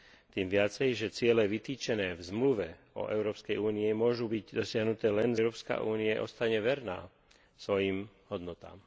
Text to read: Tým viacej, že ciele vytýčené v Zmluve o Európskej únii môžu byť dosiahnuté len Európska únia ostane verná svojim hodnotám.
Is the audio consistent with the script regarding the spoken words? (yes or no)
yes